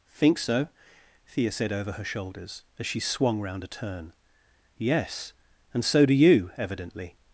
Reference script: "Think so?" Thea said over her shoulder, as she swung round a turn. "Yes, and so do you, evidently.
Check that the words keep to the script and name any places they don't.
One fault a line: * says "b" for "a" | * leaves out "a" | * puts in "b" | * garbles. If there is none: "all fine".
* says "shoulders" for "shoulder"